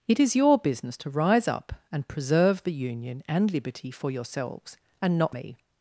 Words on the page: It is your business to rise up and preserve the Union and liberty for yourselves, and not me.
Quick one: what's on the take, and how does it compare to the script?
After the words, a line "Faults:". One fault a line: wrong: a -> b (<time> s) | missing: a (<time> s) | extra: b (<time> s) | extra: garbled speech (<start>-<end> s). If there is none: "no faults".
It is your business to rise up and preserve the Union and liberty for yourselves, and not me.
Faults:
no faults